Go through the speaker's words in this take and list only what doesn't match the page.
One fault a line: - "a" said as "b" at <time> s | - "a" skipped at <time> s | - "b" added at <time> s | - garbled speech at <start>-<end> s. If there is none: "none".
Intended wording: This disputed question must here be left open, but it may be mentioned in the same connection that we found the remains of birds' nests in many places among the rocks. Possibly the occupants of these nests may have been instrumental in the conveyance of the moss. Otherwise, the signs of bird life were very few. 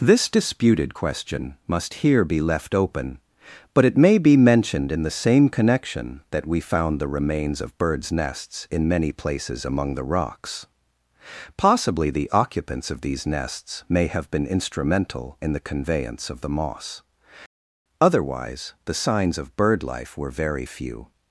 none